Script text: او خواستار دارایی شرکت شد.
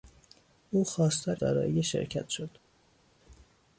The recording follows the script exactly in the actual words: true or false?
true